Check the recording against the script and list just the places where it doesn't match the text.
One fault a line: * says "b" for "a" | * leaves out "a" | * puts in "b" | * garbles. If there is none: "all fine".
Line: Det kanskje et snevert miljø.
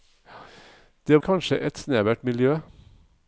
all fine